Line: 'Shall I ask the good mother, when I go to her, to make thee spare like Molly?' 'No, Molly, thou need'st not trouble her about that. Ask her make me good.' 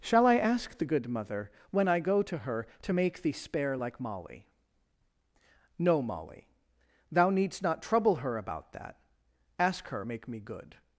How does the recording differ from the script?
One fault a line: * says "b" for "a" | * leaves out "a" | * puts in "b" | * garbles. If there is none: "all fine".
all fine